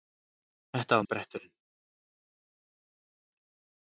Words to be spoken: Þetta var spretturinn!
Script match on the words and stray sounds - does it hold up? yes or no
yes